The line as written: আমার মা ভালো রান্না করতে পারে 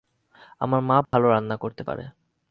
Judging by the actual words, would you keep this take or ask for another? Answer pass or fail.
pass